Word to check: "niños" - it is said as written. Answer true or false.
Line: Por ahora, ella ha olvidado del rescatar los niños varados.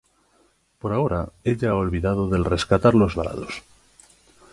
false